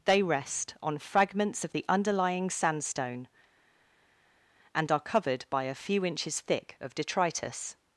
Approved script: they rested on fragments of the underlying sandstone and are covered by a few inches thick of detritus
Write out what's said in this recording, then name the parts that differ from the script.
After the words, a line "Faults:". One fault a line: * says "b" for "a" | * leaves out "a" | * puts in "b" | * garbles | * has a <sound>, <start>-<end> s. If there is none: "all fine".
they rest on fragments of the underlying sandstone and are covered by a few inches thick of detritus
Faults:
* says "rest" for "rested"